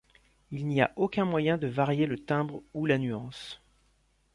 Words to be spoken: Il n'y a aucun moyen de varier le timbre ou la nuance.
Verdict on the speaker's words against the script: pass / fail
pass